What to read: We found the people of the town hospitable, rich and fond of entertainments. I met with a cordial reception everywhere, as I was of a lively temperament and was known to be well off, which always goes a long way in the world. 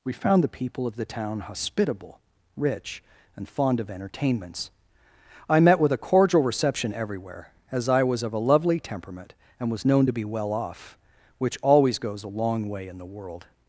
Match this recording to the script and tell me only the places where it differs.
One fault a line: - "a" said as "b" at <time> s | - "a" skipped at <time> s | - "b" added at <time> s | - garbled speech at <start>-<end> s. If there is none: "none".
- "lively" said as "lovely" at 8.4 s